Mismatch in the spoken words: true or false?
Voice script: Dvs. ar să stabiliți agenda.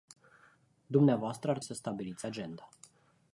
false